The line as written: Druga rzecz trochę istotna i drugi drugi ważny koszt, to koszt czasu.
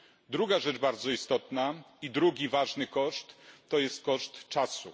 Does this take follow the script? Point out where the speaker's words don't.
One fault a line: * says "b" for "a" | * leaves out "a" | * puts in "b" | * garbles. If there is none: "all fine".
* says "bardzo" for "trochę"
* leaves out "drugi"
* puts in "jest"